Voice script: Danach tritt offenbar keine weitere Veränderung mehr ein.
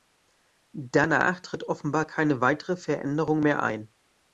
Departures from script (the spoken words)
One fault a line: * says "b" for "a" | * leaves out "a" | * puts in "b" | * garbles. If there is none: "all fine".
all fine